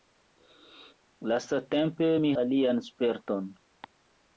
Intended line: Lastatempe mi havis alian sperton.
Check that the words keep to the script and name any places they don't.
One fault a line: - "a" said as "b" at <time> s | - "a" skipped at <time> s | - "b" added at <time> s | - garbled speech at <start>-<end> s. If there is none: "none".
- "havis" skipped at 2.3 s